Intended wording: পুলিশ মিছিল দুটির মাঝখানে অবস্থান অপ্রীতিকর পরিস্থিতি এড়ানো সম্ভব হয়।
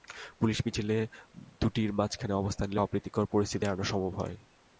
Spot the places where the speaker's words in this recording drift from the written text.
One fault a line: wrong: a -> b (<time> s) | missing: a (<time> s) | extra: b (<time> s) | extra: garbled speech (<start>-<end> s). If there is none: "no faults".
extra: নিলে (2.7 s)